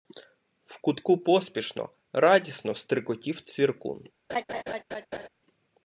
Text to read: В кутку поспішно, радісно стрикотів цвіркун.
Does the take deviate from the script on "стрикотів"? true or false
false